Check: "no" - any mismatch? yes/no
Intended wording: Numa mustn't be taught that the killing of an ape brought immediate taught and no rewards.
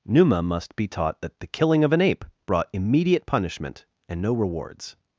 no